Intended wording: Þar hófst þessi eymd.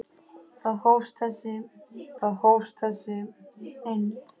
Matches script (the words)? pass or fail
fail